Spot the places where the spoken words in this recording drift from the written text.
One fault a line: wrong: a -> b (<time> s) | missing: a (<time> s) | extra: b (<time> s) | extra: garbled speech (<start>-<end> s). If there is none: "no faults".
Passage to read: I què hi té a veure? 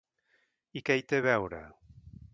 no faults